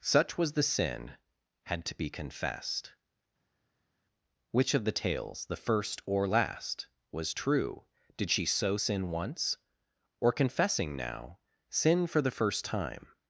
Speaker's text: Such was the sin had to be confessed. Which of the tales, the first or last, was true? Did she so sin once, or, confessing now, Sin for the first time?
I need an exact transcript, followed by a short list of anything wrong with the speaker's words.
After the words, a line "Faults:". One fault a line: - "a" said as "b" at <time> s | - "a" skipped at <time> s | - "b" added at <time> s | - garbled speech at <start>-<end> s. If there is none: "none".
Such was the sin had to be confessed. Which of the tales, the first or last, was true? Did she so sin once, or, confessing now, Sin for the first time?
Faults:
none